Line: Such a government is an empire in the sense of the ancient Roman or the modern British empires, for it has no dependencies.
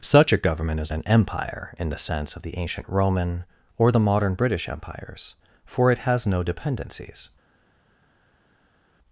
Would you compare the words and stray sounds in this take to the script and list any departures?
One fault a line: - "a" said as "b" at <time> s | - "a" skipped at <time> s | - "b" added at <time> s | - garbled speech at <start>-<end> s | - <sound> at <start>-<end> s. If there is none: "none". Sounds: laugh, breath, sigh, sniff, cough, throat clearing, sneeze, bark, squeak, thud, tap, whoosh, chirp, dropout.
none